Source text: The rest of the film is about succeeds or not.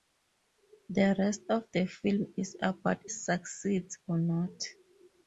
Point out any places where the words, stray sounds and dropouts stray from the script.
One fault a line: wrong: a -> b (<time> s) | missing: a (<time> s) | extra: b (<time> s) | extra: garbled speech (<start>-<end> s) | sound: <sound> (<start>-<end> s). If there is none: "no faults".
no faults